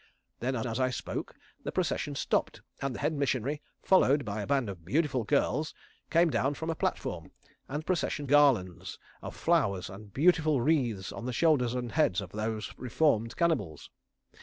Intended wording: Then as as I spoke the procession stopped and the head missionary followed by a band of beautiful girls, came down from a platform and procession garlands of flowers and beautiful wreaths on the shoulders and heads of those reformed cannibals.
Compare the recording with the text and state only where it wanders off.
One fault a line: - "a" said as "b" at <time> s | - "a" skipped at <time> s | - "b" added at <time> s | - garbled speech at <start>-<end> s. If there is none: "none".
none